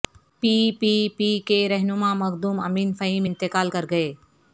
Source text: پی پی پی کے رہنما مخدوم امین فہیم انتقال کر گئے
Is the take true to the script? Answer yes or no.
yes